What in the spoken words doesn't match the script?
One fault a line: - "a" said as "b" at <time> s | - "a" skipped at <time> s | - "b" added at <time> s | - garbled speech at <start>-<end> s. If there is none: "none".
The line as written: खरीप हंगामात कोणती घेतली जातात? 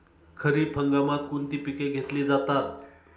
- "पिके" added at 1.6 s